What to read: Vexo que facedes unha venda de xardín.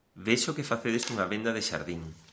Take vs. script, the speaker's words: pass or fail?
pass